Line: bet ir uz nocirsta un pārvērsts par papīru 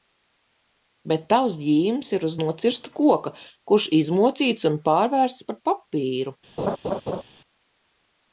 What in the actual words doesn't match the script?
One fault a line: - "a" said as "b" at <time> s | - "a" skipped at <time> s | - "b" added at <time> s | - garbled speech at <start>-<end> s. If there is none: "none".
- "tavs ģīmis" added at 1.3 s
- "koka kurš izmocīts" added at 3.0 s